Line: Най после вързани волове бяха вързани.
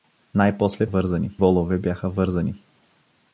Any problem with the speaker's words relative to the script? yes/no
no